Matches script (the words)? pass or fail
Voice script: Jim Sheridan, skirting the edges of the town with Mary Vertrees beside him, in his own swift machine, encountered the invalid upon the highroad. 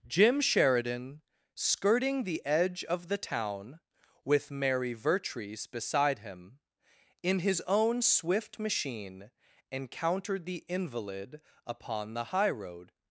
fail